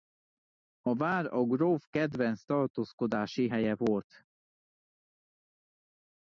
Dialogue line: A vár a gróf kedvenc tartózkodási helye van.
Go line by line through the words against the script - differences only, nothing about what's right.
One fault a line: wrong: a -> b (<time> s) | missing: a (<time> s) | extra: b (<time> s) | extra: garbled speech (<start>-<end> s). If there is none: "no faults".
wrong: van -> volt (3.7 s)